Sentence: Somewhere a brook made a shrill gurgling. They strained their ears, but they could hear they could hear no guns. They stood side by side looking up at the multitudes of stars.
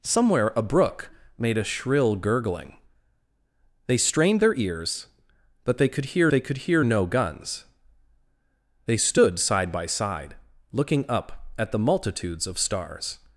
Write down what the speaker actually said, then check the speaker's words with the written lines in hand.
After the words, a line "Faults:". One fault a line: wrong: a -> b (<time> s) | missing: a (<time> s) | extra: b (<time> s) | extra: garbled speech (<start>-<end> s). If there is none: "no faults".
Somewhere a brook made a shrill gurgling. They strained their ears, but they could hear they could hear no guns. They stood side by side looking up at the multitudes of stars.
Faults:
no faults